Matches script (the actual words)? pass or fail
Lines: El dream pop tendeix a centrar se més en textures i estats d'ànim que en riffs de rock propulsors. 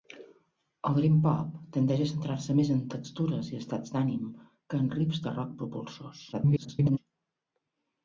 fail